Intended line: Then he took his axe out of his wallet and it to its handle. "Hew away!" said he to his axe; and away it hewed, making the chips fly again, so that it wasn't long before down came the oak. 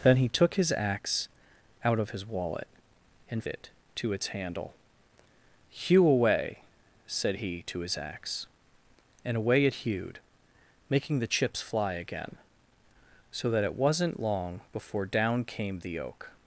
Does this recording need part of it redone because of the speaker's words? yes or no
no